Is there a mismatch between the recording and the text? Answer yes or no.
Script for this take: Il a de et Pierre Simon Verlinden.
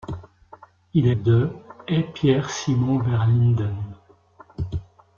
no